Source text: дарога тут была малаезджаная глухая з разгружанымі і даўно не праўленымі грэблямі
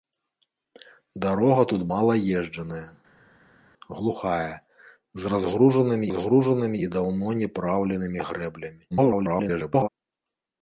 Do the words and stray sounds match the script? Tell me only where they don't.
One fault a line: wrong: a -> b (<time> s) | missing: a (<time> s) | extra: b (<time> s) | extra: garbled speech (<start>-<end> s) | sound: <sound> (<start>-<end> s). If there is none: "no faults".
missing: была (1.8 s)
extra: разгружанымі (6.1 s)
extra: garbled speech (8.9-9.9 s)